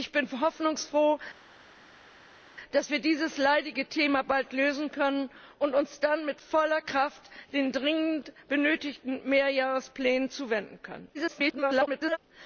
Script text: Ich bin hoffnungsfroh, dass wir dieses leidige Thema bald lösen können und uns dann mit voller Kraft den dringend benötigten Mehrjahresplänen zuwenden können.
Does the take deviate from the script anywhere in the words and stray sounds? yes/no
yes